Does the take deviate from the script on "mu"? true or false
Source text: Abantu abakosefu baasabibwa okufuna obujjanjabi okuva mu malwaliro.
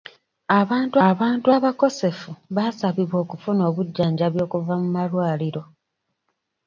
false